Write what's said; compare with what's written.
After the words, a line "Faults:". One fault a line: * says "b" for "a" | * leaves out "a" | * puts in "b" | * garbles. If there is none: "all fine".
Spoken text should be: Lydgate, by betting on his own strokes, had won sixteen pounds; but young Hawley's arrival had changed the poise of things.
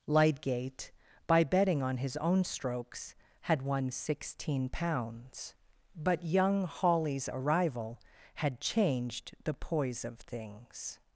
Lydgate, by betting on his own strokes, had won sixteen pounds; but young Hawley's arrival had changed the poise of things.
Faults:
all fine